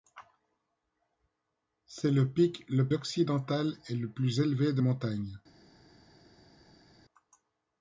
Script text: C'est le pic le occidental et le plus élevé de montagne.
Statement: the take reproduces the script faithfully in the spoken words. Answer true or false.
true